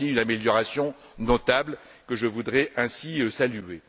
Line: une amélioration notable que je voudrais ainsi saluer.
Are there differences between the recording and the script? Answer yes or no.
no